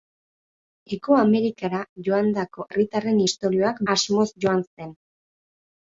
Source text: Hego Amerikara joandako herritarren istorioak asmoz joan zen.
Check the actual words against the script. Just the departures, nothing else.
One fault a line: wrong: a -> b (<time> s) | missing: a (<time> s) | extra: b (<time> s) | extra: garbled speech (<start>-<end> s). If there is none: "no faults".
no faults